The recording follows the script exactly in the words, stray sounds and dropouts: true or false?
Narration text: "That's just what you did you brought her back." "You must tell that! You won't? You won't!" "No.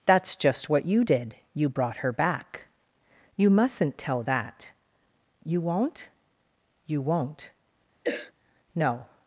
false